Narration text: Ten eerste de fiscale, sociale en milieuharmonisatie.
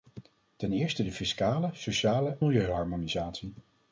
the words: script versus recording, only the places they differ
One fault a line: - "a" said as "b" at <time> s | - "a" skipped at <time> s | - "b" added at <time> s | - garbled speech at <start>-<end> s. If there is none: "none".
- "en" skipped at 2.4 s